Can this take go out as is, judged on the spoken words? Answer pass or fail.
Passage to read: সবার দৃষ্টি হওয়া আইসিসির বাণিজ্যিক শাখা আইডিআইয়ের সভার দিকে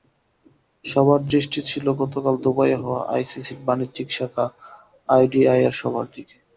fail